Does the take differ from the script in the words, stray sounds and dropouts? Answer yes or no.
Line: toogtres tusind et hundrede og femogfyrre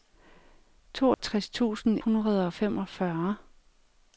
yes